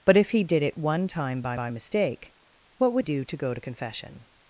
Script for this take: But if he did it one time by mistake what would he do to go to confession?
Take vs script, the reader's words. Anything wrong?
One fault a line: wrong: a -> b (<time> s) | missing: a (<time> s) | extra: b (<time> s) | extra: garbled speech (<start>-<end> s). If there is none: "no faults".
extra: by (1.5 s)
missing: he (3.1 s)